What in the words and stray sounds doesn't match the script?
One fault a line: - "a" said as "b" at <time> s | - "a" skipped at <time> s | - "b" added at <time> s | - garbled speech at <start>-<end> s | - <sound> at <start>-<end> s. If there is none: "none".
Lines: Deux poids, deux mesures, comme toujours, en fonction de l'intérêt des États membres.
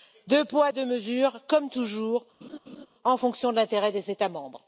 - laugh at 2.4-2.9 s